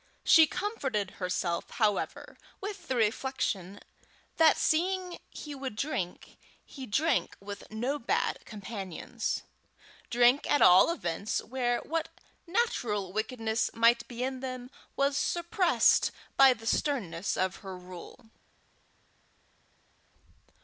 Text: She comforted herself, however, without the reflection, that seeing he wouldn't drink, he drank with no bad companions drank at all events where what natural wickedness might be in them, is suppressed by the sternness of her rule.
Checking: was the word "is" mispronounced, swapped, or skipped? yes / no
yes